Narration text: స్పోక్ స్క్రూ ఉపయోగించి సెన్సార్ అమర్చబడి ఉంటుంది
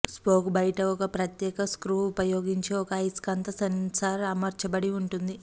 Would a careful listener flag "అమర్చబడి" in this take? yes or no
no